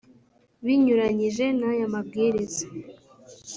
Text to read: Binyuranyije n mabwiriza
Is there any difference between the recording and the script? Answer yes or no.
yes